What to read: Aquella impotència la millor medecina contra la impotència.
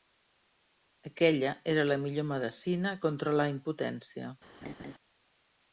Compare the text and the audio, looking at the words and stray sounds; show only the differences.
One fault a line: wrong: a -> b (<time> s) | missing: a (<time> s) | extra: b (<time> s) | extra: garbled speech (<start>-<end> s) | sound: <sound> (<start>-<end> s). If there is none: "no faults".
wrong: impotència -> era (1.8 s)
sound: laugh (4.6-4.9 s)